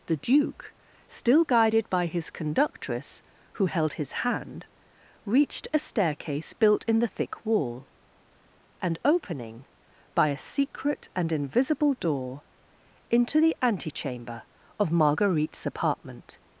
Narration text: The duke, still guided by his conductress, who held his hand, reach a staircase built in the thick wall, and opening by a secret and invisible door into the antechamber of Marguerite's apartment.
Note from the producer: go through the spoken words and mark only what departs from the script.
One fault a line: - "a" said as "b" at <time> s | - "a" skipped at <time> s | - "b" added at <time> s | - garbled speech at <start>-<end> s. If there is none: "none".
- "reach" said as "reached" at 5.2 s